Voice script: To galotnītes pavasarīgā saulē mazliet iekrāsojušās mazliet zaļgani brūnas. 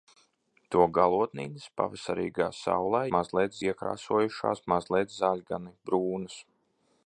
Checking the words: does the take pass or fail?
pass